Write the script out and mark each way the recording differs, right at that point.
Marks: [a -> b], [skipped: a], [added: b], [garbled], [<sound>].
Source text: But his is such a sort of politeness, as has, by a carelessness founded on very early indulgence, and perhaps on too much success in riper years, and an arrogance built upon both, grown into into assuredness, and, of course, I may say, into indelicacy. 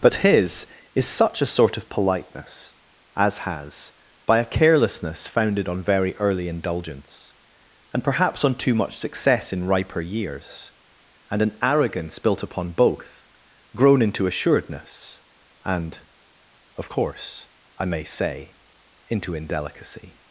But his is such a sort of politeness, as has, by a carelessness founded on very early indulgence, and perhaps on too much success in riper years, and an arrogance built upon both, grown into [skipped: into] assuredness, and, of course, I may say, into indelicacy.